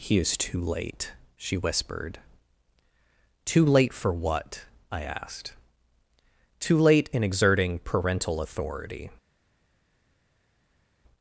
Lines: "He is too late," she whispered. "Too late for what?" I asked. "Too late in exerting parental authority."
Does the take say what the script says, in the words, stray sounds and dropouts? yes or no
yes